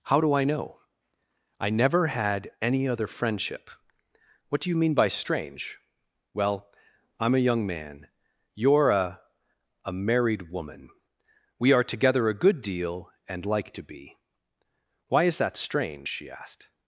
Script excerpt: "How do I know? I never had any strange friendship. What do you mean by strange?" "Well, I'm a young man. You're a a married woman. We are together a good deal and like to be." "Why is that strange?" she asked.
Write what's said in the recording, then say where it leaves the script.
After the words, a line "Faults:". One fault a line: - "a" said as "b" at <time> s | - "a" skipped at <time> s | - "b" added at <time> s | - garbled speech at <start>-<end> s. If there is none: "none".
"How do I know? I never had any other friendship. What do you mean by strange?" "Well, I'm a young man. You're a a married woman. We are together a good deal and like to be." "Why is that strange?" she asked.
Faults:
- "strange" said as "other" at 2.9 s